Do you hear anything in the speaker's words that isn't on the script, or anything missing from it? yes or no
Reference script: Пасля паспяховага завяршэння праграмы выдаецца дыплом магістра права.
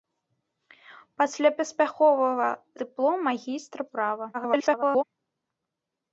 yes